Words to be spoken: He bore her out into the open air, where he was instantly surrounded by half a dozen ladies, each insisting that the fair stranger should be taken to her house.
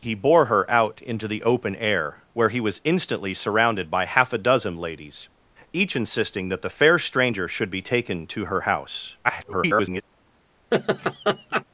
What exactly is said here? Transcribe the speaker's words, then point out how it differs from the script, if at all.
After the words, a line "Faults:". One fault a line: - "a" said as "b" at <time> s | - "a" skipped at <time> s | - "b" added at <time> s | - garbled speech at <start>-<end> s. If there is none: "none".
He bore her out into the open air, where he was instantly surrounded by half a dozen ladies, each insisting that the fair stranger should be taken to her house. [garbled]
Faults:
- garbled speech at 9.2-10.0 s